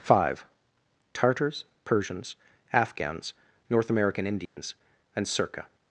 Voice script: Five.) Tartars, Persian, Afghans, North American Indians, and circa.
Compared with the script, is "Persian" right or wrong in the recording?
wrong